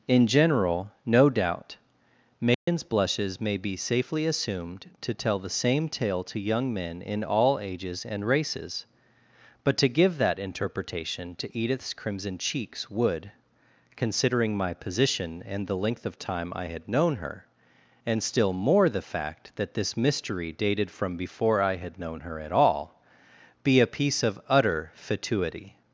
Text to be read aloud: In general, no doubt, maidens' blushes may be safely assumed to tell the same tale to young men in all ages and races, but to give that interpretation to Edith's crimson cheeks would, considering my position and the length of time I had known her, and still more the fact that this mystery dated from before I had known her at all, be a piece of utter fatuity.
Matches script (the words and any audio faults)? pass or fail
fail